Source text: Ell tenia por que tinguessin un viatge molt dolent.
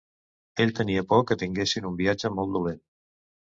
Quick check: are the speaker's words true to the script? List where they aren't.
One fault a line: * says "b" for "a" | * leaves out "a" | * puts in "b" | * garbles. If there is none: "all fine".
all fine